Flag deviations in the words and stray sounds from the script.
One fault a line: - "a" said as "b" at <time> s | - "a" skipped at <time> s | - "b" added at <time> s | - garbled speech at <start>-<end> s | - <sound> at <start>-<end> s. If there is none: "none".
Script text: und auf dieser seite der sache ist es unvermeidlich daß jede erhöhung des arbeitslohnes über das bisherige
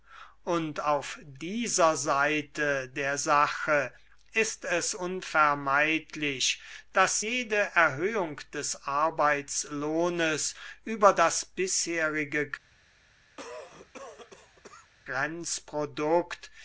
- cough at 13.4-14.9 s